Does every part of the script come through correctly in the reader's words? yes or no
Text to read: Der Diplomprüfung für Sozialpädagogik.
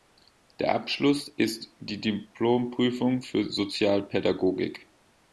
no